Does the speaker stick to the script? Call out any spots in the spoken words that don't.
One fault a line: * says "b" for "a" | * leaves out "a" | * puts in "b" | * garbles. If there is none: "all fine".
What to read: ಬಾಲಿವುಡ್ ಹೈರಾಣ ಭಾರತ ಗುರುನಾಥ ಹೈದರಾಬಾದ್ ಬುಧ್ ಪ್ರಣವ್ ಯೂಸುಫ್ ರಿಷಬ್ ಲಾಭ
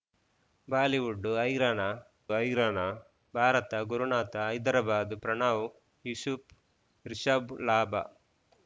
* puts in "ಹೈರಾಣ"
* leaves out "ಬುಧ್"